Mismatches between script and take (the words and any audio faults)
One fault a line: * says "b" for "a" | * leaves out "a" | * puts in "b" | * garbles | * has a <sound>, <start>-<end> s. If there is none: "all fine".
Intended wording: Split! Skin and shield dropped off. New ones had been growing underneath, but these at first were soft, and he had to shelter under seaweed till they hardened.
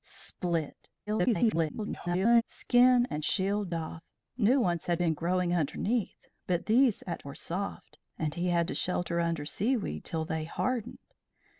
* garbles
* leaves out "dropped"
* leaves out "first"